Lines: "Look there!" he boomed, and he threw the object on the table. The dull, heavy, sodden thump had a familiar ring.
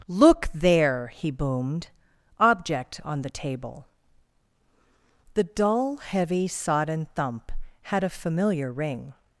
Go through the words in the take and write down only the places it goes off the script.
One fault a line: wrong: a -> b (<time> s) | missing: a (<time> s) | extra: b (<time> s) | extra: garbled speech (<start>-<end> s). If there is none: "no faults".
missing: and he threw the (1.9 s)